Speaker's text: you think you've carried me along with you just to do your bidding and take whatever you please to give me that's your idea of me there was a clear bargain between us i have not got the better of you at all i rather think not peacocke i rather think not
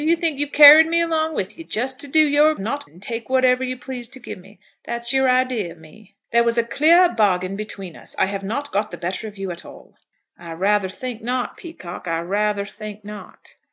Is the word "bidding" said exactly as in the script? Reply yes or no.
no